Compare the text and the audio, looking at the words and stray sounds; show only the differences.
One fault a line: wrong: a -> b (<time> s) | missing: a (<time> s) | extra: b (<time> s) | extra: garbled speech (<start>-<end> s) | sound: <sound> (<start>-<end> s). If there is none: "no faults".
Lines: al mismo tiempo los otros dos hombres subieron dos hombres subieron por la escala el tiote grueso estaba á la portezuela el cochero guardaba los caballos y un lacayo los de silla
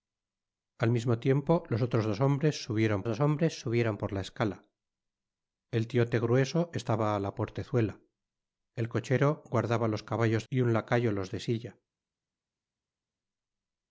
no faults